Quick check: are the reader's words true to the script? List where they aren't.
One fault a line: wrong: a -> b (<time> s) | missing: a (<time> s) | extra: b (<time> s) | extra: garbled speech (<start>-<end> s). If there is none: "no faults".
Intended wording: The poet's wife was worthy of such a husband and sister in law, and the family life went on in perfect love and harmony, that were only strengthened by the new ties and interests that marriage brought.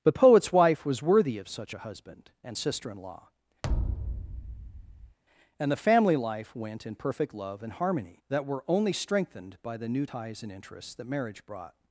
missing: on (6.9 s)